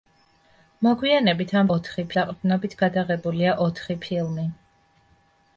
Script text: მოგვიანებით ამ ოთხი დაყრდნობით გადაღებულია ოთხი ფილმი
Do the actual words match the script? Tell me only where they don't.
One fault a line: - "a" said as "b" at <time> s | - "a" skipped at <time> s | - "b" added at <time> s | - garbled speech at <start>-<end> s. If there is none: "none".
none